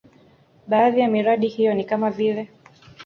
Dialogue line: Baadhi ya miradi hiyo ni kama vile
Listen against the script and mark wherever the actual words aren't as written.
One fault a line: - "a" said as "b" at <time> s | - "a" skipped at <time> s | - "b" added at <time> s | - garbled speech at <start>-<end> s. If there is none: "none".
none